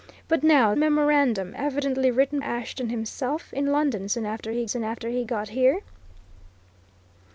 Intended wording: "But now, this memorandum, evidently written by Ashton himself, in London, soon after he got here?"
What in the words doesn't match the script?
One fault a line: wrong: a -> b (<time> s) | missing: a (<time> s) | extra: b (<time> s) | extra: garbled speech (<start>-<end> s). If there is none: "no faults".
missing: this (0.7 s)
missing: by (2.4 s)
extra: soon after he (4.7 s)